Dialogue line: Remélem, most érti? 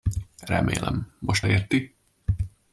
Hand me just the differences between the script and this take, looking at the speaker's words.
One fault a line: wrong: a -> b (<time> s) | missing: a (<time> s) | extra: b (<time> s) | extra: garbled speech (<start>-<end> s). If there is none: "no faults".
no faults